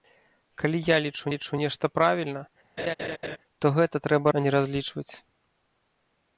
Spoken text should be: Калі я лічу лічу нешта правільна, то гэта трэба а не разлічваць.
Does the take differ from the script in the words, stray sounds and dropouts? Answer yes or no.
yes